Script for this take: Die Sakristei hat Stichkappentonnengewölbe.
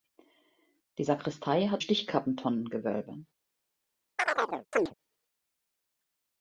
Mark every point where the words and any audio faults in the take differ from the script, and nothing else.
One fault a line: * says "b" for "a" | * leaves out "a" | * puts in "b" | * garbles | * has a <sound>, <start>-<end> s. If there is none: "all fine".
* has a chirp, 4.2-4.9 s